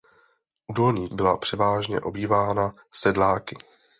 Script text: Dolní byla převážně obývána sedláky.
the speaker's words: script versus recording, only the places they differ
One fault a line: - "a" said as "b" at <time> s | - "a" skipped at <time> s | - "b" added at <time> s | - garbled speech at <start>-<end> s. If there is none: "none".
none